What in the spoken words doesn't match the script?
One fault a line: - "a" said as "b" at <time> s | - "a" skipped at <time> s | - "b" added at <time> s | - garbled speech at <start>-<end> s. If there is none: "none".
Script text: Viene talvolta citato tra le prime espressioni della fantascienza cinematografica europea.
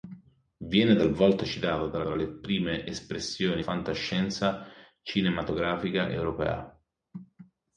- "tra" added at 2.0 s
- "della" skipped at 3.6 s